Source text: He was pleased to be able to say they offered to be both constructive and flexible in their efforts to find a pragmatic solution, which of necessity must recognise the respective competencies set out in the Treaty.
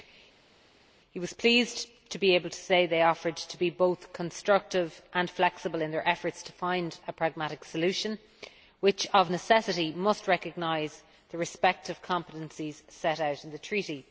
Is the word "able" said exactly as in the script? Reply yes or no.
yes